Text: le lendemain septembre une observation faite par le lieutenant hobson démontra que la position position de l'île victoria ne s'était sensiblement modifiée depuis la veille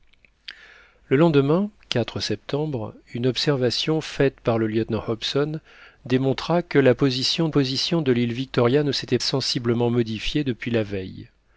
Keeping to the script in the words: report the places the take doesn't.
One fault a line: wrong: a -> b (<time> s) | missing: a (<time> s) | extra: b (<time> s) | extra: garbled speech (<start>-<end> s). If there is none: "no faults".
no faults